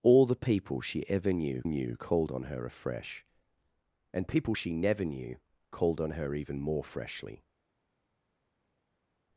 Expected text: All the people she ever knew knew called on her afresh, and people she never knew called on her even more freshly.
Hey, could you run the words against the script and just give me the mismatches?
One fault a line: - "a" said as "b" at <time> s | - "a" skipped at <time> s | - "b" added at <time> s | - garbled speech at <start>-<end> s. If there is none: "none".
none